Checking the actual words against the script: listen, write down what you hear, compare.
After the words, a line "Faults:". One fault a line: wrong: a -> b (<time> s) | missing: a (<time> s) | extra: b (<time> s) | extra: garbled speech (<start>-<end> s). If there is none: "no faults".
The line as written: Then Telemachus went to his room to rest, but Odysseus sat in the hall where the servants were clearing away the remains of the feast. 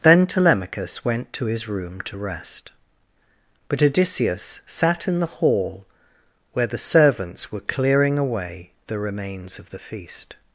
Then Telemachus went to his room to rest, but Odysseus sat in the hall where the servants were clearing away the remains of the feast.
Faults:
no faults